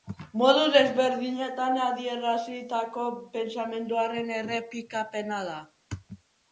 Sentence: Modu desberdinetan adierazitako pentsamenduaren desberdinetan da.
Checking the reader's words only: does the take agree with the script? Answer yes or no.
no